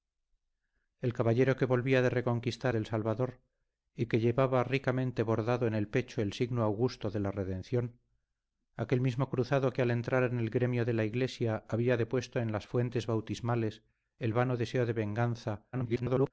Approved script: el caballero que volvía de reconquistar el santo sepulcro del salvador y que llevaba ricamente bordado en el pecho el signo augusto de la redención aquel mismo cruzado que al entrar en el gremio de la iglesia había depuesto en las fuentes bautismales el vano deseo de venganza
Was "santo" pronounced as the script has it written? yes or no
no